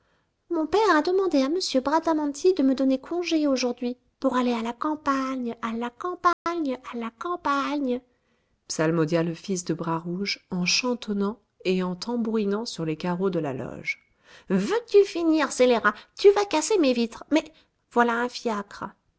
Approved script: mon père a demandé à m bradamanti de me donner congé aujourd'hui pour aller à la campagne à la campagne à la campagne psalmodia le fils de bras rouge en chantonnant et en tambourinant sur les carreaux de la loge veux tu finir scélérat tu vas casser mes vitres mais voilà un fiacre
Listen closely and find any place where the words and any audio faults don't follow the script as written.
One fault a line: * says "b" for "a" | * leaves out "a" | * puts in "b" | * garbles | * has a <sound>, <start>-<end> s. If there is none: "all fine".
* has a dropout, 6.3-6.5 s